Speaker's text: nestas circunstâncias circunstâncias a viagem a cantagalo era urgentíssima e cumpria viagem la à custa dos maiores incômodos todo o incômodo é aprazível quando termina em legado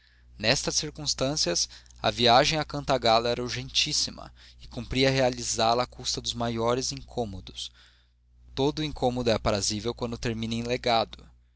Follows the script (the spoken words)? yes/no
no